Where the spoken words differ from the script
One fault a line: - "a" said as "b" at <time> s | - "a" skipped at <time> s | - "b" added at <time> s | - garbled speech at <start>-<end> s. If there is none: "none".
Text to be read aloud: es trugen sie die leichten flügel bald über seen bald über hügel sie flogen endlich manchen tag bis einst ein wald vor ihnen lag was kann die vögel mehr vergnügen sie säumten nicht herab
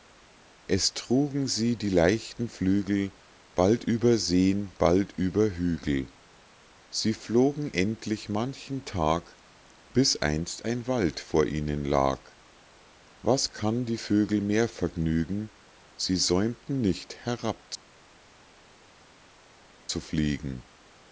none